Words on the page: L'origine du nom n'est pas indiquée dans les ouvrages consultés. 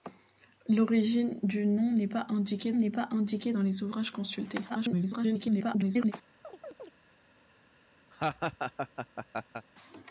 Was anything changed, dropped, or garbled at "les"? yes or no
no